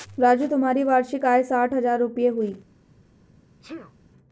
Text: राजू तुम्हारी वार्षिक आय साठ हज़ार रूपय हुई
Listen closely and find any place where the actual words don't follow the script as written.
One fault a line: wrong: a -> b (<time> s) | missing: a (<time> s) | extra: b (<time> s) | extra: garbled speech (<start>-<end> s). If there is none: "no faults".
no faults